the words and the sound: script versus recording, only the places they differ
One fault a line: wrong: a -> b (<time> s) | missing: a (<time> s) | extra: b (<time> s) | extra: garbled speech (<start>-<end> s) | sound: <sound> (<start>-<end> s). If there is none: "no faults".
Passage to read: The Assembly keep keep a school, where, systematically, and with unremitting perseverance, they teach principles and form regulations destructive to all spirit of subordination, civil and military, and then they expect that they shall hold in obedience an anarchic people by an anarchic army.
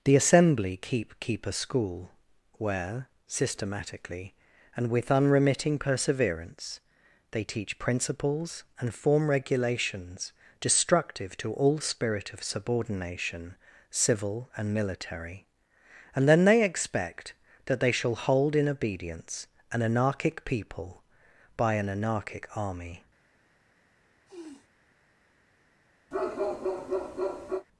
sound: sniff (24.3-24.7 s)
sound: bark (26.1-27.7 s)